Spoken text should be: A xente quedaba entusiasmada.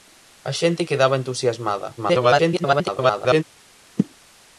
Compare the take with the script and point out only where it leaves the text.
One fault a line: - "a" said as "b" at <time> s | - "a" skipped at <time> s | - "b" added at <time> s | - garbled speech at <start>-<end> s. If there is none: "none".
- garbled speech at 2.0-3.4 s